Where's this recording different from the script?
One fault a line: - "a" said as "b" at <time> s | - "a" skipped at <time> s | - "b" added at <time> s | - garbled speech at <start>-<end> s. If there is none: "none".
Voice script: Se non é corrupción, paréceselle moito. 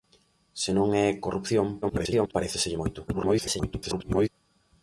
- garbled speech at 1.8-2.3 s
- garbled speech at 3.1-4.3 s